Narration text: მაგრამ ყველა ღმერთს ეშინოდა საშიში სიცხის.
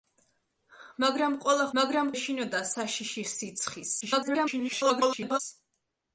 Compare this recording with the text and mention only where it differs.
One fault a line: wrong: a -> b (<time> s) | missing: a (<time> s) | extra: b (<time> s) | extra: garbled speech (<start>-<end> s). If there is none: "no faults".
wrong: ღმერთს -> მაგრამ (1.8 s)
extra: garbled speech (4.0-5.4 s)